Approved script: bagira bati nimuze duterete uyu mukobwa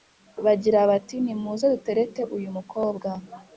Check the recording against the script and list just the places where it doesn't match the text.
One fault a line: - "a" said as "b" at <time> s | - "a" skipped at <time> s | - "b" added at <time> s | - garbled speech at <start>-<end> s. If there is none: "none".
none